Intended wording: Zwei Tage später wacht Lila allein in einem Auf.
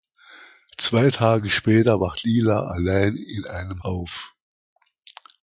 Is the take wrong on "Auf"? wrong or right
right